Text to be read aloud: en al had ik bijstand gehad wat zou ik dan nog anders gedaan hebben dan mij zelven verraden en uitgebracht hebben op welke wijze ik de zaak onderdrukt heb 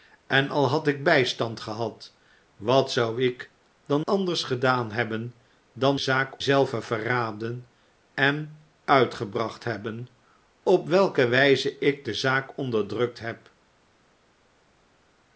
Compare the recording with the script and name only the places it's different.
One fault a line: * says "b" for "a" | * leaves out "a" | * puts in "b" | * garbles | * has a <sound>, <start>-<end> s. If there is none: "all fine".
* leaves out "nog"
* says "zaak" for "mij"